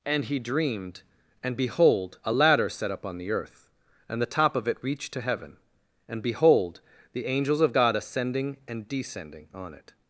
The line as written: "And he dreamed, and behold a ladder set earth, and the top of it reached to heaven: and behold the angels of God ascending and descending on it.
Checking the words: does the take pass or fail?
fail